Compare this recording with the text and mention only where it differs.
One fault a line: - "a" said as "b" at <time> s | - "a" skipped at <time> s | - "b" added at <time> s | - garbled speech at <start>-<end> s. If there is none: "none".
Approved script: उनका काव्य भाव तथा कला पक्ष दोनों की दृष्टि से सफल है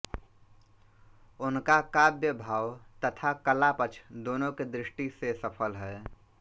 none